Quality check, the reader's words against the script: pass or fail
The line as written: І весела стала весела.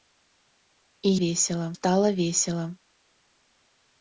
pass